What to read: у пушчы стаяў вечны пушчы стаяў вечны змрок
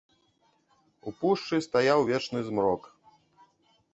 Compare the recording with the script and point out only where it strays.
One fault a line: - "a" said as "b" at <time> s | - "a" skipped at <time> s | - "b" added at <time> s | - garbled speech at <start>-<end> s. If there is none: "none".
- "пушчы стаяў вечны" skipped at 2.4 s